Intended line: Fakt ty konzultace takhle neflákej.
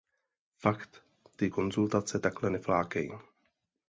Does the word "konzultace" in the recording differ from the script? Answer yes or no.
no